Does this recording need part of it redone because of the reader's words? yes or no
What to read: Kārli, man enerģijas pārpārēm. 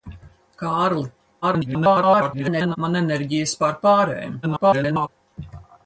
yes